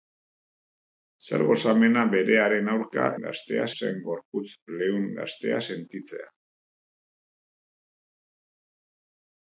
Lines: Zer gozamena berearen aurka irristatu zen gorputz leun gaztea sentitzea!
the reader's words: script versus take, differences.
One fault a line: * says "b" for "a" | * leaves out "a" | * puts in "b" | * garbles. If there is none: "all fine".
* says "gaztea" for "irristatu"